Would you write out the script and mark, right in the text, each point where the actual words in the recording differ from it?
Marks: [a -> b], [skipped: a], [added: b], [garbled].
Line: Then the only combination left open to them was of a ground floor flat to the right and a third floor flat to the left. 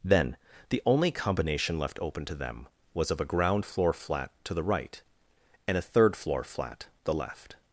Then the only combination left open to them was of a ground floor flat to the right and a third floor flat [skipped: to] the left.